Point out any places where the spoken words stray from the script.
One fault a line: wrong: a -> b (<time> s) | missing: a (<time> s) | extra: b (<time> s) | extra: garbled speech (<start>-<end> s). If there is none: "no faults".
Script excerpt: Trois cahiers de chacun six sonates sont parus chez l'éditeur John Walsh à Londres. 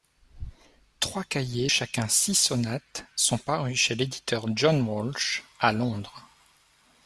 missing: de (1.7 s)